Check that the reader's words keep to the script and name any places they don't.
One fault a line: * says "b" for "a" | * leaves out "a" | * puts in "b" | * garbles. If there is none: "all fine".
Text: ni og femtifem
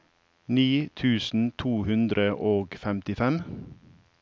* puts in "tusen to hundre"